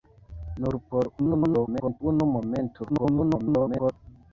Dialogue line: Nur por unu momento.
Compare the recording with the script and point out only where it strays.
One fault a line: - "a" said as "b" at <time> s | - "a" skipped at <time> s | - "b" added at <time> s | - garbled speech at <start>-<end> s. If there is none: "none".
- garbled speech at 1.2-2.0 s
- garbled speech at 2.9-3.9 s